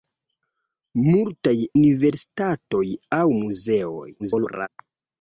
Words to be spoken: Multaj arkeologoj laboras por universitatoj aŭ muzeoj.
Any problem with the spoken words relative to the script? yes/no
yes